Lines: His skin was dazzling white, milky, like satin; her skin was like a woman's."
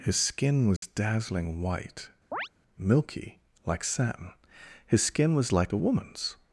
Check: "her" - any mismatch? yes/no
yes